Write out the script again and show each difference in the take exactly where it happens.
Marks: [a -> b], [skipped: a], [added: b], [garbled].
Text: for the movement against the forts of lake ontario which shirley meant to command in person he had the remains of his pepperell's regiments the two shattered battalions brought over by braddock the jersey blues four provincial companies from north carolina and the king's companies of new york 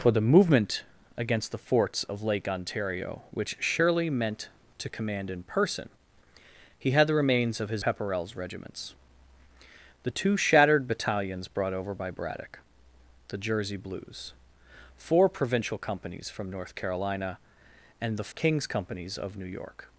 for the movement against the forts of lake ontario which shirley meant to command in person he had the remains of his pepperell's regiments the two shattered battalions brought over by braddock the jersey blues four provincial companies from north carolina and the king's companies of new york